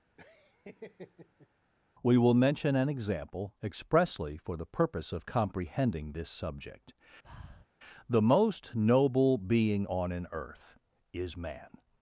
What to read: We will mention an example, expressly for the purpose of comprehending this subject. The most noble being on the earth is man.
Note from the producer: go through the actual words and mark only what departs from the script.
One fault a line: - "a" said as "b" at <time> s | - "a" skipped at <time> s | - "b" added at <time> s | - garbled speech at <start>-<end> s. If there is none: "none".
- "the" said as "an" at 10.1 s